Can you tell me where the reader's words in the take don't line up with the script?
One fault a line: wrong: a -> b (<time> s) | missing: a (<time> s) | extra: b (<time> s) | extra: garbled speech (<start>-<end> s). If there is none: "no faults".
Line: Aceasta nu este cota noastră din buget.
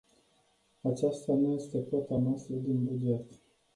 no faults